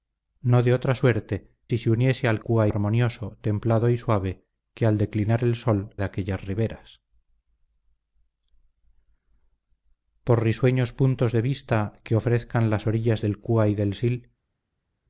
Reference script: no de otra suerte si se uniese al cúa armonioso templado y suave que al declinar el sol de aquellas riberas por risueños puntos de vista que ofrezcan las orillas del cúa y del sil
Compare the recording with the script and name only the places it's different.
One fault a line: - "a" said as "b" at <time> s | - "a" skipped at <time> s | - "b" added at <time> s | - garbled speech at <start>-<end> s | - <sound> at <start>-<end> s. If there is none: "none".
none